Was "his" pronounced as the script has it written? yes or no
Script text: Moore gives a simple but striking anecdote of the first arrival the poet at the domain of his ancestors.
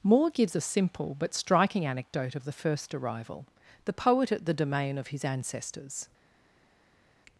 yes